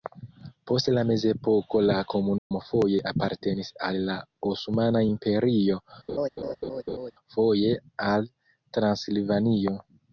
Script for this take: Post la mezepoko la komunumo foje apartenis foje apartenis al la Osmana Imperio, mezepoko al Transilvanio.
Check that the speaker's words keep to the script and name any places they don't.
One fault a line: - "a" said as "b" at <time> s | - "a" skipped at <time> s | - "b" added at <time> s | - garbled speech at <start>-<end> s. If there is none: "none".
- "foje apartenis" skipped at 3.7 s
- "mezepoko" said as "foje" at 7.4 s